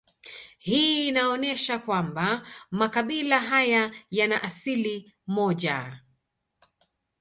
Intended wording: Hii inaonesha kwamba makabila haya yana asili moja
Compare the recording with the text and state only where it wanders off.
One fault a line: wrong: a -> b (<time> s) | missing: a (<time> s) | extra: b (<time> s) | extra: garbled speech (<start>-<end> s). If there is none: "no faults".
no faults